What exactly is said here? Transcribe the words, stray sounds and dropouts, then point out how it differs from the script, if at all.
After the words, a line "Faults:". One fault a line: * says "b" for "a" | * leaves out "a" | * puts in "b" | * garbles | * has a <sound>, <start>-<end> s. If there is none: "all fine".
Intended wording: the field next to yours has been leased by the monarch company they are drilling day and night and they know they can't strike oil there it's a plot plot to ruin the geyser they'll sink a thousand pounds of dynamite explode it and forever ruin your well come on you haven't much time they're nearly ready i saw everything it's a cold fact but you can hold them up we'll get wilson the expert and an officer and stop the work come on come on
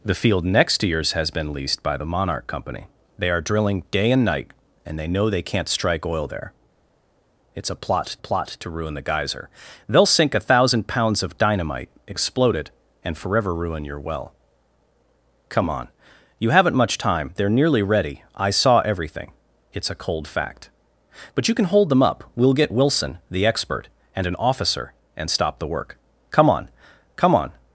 the field next to yours has been leased by the monarch company they are drilling day and night and they know they can't strike oil there it's a plot plot to ruin the geyser they'll sink a thousand pounds of dynamite explode it and forever ruin your well come on you haven't much time they're nearly ready i saw everything it's a cold fact but you can hold them up we'll get wilson the expert and an officer and stop the work come on come on
Faults:
all fine